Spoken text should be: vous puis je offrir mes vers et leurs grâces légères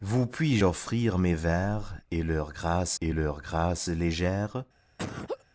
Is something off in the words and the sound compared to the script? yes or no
yes